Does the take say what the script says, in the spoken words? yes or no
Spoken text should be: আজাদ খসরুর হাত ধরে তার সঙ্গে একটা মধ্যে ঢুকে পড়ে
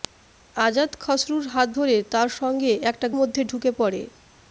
yes